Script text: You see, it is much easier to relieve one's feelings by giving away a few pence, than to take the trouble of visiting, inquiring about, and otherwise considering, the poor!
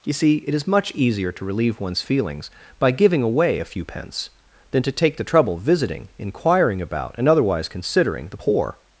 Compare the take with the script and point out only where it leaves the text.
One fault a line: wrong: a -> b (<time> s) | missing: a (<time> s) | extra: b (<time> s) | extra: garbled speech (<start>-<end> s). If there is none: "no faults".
missing: of (5.6 s)